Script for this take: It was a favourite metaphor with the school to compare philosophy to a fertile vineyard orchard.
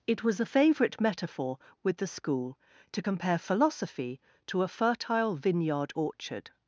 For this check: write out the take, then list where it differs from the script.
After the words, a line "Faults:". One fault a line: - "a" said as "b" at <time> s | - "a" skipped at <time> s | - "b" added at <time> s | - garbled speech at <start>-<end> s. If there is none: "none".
It was a favourite metaphor with the school to compare philosophy to a fertile vineyard orchard.
Faults:
none